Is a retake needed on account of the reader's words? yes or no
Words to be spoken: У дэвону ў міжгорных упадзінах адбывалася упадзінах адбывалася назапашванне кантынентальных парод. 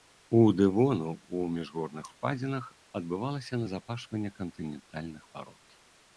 yes